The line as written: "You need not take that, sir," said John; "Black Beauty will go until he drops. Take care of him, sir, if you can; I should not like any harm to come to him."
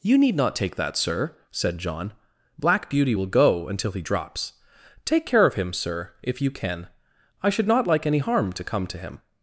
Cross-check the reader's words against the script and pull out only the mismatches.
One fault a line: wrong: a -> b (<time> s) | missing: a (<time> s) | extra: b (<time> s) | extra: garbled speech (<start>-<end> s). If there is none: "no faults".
no faults